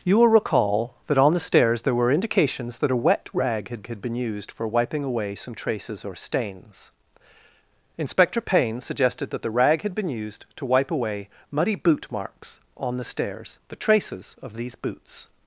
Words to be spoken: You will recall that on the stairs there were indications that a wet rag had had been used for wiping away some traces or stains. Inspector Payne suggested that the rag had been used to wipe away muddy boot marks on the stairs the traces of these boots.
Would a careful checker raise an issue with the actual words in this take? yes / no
no